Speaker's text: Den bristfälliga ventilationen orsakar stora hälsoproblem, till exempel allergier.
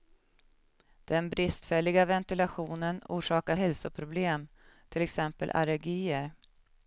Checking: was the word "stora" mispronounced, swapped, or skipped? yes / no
yes